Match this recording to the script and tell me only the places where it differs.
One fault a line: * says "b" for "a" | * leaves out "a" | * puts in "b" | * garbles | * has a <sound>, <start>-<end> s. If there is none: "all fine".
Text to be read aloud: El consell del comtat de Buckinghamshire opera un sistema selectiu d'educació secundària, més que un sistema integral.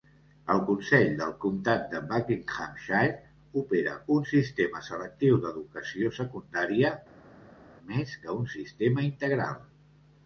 all fine